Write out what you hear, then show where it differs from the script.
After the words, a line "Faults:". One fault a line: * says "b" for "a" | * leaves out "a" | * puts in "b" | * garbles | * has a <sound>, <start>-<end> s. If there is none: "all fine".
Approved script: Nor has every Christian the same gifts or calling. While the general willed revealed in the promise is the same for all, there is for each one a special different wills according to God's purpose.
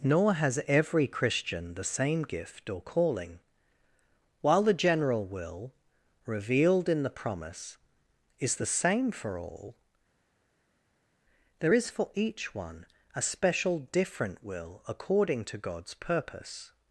Nor has every Christian the same gift or calling. While the general will revealed in the promise is the same for all, there is for each one a special different will according to God's purpose.
Faults:
* says "gift" for "gifts"
* says "will" for "willed"
* says "will" for "wills"